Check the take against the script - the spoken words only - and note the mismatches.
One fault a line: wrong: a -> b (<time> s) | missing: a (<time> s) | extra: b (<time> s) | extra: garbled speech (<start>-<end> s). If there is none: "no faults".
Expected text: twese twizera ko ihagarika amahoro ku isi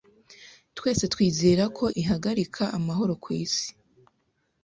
no faults